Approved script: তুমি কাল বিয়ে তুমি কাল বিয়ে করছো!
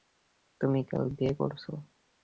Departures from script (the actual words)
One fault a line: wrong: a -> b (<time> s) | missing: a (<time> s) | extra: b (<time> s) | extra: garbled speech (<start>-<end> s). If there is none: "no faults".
missing: তুমি কাল বিয়ে (1.3 s)